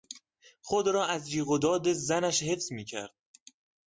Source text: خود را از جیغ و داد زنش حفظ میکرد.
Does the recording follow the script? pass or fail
pass